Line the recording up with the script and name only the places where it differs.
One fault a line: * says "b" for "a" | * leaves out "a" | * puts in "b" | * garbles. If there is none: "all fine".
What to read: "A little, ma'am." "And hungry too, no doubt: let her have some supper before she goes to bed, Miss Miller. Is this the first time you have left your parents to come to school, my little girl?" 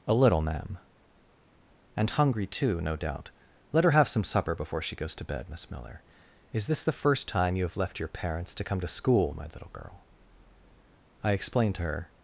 * puts in "I explained to her"